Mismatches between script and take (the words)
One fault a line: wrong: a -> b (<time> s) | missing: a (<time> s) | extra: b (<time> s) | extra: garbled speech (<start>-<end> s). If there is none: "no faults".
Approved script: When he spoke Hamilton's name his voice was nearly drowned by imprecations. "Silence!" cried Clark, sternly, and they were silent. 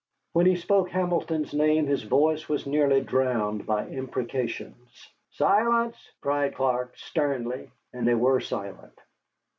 no faults